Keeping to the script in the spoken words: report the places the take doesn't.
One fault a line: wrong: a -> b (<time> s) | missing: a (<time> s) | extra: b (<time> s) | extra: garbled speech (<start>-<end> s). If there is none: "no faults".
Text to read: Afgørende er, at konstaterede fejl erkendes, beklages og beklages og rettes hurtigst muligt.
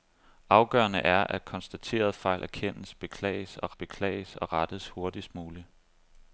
no faults